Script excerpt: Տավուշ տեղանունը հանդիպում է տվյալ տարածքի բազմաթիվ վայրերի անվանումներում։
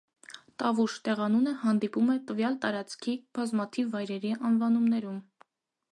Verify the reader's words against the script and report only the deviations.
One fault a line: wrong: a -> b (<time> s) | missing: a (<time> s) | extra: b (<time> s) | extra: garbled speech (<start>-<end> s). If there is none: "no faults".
no faults